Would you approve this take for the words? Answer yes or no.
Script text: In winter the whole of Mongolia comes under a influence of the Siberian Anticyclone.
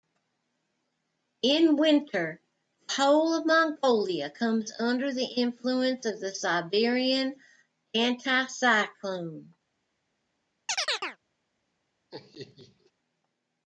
no